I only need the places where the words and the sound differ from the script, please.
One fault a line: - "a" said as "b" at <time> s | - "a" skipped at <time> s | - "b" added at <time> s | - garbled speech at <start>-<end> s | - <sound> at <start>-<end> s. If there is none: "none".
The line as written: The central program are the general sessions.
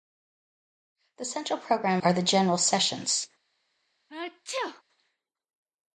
- sneeze at 4.1-4.8 s